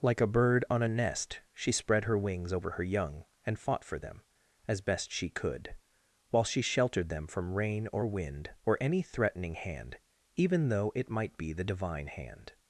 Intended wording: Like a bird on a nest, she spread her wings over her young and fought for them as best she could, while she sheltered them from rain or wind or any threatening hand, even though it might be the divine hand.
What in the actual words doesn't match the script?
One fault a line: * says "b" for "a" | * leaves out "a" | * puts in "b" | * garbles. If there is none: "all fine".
all fine